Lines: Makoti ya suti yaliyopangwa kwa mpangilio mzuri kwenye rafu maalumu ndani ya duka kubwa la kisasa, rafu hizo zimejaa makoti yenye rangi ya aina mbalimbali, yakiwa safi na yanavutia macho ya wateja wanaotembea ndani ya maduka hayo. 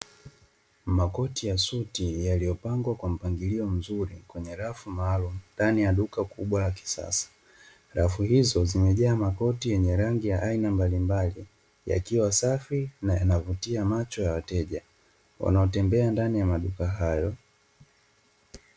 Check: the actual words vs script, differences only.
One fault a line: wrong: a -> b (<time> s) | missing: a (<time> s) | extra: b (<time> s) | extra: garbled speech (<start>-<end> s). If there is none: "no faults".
no faults